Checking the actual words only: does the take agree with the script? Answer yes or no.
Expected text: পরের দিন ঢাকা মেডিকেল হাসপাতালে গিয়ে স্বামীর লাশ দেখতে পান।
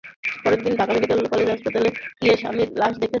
no